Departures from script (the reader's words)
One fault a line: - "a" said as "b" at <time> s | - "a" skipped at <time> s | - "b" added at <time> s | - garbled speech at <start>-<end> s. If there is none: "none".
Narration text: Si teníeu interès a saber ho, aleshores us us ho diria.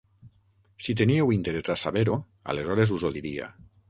- "us" skipped at 3.1 s